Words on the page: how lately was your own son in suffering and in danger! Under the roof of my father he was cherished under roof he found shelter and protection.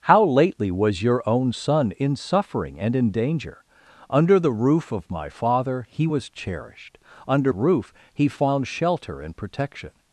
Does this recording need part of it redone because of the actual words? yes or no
no